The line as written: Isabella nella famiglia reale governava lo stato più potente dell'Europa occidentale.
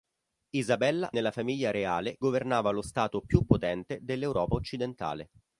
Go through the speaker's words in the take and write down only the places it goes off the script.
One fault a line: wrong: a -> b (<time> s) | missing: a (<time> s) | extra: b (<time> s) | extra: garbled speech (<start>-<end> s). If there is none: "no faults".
no faults